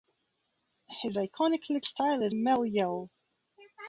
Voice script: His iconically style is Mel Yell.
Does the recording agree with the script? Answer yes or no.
yes